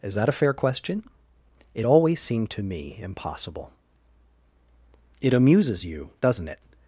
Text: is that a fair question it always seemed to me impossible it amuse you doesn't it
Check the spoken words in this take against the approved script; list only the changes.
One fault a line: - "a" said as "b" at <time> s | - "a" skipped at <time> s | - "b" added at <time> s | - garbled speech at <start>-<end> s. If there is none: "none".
- "amuse" said as "amuses" at 5.3 s